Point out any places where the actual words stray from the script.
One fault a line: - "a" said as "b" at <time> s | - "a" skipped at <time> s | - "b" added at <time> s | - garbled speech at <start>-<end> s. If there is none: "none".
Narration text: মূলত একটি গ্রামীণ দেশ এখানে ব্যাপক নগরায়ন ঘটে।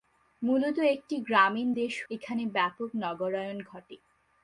none